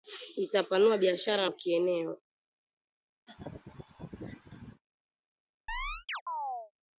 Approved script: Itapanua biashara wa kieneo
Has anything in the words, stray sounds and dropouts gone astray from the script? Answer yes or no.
yes